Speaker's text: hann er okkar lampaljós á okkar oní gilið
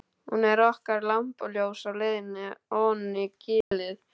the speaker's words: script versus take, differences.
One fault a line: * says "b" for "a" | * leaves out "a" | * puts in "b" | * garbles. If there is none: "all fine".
* says "hún" for "hann"
* says "leiðinni" for "okkar"